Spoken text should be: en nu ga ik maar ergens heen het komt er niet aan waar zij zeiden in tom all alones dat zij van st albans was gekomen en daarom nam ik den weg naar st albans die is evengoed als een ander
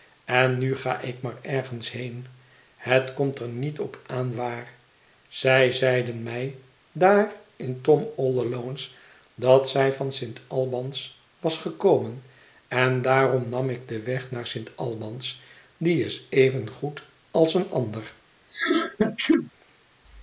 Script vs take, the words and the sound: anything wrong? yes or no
yes